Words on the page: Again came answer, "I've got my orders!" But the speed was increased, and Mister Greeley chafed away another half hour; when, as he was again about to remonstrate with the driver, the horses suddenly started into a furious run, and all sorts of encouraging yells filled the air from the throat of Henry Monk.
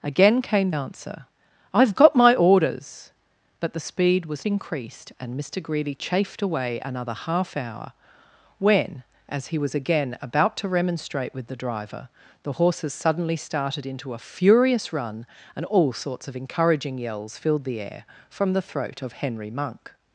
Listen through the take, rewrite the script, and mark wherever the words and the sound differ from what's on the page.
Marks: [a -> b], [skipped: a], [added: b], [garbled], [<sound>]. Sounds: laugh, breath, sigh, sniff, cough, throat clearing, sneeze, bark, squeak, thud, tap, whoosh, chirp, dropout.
Again came answer, "I've got my orders!" But the speed was increased, and Mister Greeley chafed away another half hour; when, as he was again about to remonstrate with the driver, the horses suddenly started into a furious run, and all sorts of encouraging yells filled the air from the throat of Henry Monk.